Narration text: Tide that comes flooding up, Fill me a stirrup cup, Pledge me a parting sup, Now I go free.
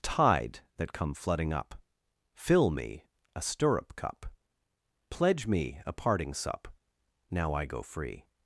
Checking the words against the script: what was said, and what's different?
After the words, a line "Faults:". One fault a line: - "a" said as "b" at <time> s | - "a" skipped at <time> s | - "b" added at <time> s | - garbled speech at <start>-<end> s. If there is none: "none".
Tide that come flooding up, Fill me a stirrup cup, Pledge me a parting sup, Now I go free.
Faults:
- "comes" said as "come" at 0.9 s